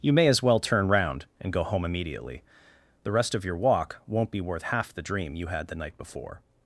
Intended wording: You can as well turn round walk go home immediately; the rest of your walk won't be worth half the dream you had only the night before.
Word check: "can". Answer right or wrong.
wrong